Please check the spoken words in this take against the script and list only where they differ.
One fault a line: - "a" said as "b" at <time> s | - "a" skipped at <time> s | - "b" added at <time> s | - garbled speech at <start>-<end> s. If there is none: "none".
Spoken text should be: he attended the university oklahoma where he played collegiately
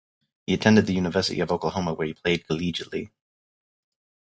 - "of" added at 1.4 s